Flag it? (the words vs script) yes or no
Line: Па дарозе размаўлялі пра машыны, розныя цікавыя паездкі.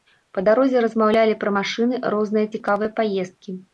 no